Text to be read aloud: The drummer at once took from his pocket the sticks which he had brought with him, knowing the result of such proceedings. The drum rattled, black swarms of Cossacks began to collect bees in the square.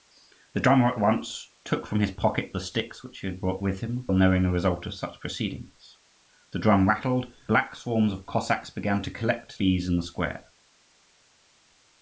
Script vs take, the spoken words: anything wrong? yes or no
no